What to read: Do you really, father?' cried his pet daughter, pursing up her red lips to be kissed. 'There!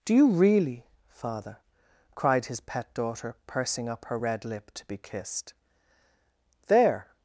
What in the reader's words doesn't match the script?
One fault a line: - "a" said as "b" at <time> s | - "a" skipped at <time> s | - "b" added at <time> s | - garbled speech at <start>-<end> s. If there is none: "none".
- "lips" said as "lip" at 4.5 s